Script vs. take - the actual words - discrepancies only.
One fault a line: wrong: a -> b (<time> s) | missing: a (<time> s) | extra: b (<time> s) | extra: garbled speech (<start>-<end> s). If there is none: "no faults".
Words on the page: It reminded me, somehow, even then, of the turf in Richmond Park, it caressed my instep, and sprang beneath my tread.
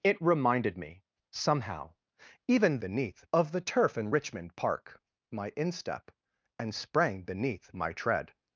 wrong: then -> beneath (2.8 s)
missing: it caressed (5.0 s)